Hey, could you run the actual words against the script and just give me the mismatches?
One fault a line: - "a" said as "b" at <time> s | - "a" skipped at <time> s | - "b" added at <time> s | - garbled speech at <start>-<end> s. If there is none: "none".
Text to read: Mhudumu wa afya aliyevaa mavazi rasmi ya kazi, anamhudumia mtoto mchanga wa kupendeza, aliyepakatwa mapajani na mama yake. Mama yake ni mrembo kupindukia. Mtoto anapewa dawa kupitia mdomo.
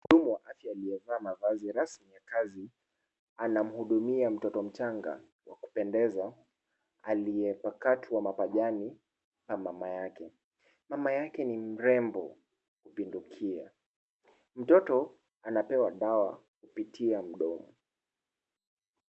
none